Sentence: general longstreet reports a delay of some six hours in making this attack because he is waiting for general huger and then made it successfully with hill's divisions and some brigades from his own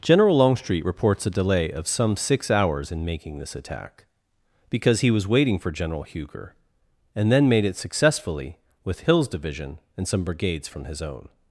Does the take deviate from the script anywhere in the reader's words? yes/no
yes